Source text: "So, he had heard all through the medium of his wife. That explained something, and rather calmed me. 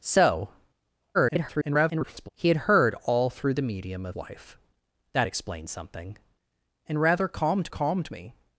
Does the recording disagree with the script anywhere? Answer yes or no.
yes